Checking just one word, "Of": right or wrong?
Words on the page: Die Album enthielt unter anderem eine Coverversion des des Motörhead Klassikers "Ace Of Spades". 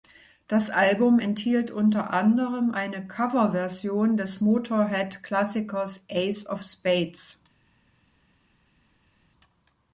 right